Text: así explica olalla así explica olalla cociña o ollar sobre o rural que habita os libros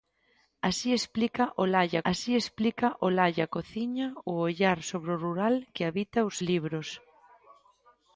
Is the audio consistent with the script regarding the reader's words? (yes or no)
yes